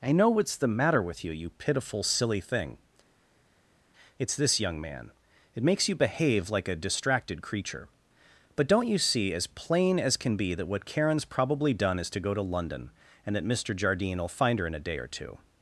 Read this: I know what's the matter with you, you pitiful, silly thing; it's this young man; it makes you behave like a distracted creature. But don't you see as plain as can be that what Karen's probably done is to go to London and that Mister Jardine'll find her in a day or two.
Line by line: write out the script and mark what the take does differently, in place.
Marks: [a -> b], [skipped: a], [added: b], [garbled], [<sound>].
I know what's the matter with you, you pitiful, silly thing; it's this young man; it makes you behave like a distracted creature. But don't you see as plain as can be that what Karen's probably done is to go to London and that Mister Jardine'll find her in a day or two.